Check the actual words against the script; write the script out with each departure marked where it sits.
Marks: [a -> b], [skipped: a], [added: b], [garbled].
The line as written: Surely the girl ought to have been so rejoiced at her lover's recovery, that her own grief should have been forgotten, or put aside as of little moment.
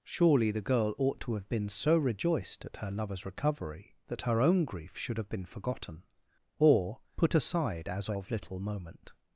Surely the girl ought to have been so rejoiced at her lover's recovery, that her own grief should have been forgotten, or put aside as of little moment.